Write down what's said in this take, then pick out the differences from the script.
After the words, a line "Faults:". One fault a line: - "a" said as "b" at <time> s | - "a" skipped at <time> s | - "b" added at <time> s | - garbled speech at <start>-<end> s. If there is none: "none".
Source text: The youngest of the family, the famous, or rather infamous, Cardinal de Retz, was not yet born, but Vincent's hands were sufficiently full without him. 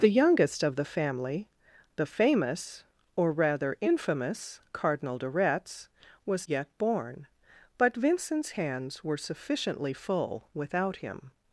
The youngest of the family, the famous, or rather infamous, Cardinal de Retz, was yet born, but Vincent's hands were sufficiently full without him.
Faults:
- "not" skipped at 6.5 s